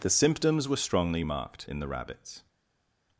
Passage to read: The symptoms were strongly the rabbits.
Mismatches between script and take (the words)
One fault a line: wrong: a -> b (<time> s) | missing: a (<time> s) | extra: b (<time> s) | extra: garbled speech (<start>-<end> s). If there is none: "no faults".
extra: marked in (1.2 s)